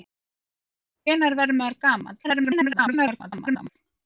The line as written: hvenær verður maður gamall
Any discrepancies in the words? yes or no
yes